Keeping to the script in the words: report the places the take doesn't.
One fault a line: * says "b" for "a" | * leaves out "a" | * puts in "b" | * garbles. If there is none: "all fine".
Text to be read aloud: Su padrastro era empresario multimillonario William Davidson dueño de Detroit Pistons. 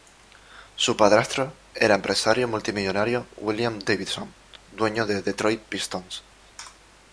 all fine